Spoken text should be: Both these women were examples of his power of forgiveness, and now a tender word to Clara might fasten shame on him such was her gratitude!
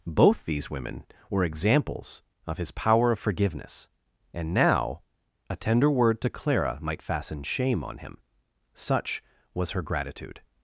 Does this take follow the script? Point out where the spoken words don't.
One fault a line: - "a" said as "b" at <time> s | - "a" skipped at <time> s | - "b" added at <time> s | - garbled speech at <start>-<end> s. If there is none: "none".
none